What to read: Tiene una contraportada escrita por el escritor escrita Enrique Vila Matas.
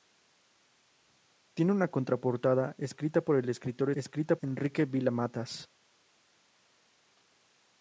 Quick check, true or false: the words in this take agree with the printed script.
true